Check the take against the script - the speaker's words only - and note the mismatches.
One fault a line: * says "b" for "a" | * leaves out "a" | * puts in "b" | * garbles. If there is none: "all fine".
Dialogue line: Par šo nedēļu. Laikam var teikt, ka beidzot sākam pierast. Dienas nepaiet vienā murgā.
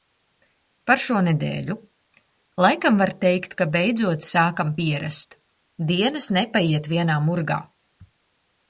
all fine